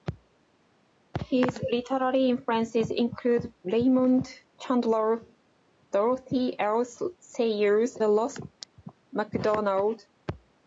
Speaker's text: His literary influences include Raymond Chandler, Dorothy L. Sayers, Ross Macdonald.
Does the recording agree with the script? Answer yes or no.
yes